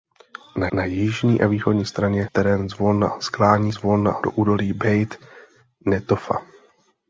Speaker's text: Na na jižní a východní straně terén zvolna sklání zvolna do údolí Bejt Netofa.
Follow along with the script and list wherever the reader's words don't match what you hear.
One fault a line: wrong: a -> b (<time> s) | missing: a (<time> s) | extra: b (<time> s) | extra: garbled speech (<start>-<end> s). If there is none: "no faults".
no faults